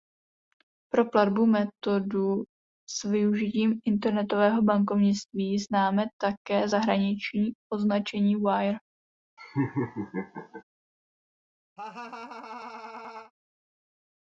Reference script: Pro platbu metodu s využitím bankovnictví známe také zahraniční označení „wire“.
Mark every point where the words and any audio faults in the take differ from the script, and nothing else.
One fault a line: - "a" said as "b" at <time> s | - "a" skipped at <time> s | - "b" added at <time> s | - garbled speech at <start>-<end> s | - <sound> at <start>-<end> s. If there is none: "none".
- "internetového" added at 3.9 s
- laugh at 9.4-10.6 s
- laugh at 11.8-13.3 s